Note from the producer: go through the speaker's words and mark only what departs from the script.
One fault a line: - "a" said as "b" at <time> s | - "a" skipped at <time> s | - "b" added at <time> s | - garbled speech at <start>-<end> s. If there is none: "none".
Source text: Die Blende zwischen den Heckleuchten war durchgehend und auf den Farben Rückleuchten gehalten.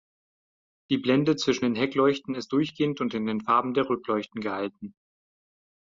- "war" said as "ist" at 2.3 s
- "auf" said as "in" at 3.2 s
- "der" added at 3.7 s